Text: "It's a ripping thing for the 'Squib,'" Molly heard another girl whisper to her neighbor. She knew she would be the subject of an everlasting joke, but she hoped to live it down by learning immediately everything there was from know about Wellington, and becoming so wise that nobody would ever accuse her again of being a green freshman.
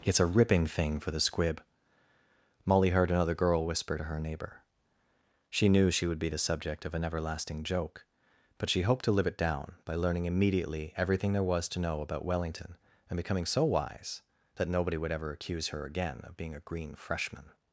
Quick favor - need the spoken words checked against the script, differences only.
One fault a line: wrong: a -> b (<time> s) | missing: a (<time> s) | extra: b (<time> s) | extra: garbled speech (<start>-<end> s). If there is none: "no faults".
wrong: from -> to (11.7 s)